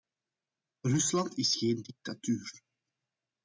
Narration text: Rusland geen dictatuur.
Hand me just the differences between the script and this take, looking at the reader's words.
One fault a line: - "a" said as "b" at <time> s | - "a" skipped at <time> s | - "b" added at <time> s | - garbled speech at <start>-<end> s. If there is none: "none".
- "is" added at 1.4 s